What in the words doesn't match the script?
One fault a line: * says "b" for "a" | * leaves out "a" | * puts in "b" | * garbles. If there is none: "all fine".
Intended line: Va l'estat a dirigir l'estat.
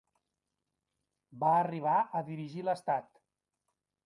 * says "arribar" for "l'estat"